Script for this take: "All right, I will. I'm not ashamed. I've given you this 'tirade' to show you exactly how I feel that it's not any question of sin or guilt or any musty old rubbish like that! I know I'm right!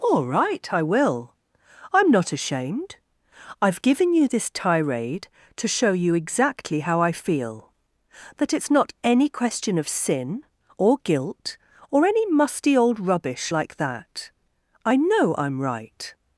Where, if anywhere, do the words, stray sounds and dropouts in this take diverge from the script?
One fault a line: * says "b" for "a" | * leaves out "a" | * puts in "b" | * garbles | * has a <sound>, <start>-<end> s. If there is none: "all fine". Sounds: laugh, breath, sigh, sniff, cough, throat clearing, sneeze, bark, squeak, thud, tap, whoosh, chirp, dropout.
all fine